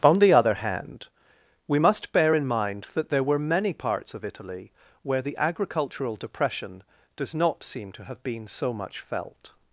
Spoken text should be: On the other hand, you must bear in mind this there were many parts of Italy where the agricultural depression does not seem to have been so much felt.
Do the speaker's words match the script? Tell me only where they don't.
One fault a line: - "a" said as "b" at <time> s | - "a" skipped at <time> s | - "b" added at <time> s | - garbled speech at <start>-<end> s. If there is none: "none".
- "you" said as "we" at 1.7 s
- "this" said as "that" at 2.9 s